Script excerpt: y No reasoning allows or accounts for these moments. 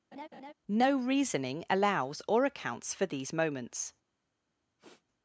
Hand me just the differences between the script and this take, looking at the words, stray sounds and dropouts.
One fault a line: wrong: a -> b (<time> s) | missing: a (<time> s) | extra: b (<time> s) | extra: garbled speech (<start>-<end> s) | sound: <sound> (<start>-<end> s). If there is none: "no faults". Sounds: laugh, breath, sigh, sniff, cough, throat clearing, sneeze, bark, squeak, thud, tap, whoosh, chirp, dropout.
sound: laugh (0.1-0.5 s)
missing: y (0.7 s)
sound: sniff (4.8-5.0 s)